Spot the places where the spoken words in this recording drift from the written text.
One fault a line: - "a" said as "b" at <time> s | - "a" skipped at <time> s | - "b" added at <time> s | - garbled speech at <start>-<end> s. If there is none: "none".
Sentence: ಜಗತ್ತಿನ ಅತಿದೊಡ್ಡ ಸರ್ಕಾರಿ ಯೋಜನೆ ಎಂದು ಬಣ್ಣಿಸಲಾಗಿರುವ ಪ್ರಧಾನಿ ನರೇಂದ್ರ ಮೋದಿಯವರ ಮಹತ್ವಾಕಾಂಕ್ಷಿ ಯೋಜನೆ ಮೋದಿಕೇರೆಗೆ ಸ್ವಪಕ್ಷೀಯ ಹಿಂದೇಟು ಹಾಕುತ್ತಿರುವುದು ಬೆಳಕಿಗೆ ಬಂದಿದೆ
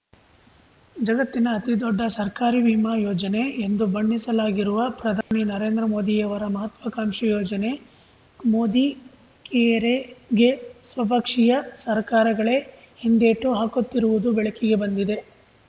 - "ವಿಮಾ" added at 2.6 s
- "ಸರ್ಕಾರಗಳೇ" added at 11.8 s